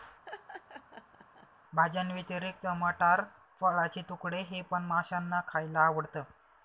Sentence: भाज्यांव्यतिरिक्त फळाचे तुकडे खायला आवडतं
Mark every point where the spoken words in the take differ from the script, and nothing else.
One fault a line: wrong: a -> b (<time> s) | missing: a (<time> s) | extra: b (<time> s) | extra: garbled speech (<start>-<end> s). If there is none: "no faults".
extra: मटार (2.8 s)
extra: हे पण माशांना (4.4 s)